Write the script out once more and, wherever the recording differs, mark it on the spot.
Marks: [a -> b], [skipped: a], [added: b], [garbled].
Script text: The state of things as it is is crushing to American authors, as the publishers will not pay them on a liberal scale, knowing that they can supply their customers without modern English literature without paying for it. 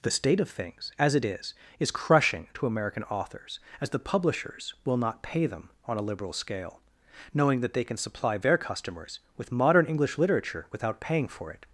The state of things as it is is crushing to American authors, as the publishers will not pay them on a liberal scale, knowing that they can supply their customers [without -> with] modern English literature without paying for it.